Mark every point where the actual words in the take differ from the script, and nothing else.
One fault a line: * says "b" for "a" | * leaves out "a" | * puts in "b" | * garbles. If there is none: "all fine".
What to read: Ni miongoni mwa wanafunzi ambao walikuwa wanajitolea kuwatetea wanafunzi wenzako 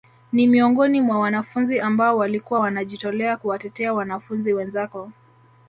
all fine